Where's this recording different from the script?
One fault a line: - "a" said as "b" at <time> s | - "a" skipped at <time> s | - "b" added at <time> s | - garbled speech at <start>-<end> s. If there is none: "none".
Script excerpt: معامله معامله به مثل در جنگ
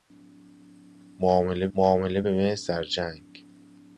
none